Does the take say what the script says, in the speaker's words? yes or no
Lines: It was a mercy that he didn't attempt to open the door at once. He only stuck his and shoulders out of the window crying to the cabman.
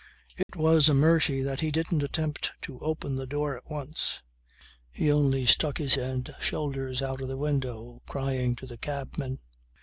yes